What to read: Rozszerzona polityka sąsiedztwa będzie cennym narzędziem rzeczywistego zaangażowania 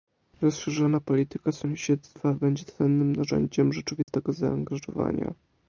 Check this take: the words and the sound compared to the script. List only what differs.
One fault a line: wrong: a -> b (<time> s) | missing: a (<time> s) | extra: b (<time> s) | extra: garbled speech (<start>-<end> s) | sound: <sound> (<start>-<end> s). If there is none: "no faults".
sound: dropout (4.0-4.1 s)